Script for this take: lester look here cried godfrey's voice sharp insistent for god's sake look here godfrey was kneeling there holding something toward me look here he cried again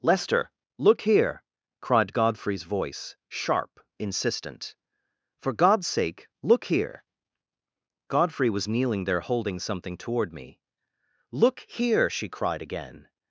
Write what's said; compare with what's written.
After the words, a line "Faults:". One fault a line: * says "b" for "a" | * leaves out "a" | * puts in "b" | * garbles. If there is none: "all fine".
lester look here cried godfrey's voice sharp insistent for god's sake look here godfrey was kneeling there holding something toward me look here she cried again
Faults:
* says "she" for "he"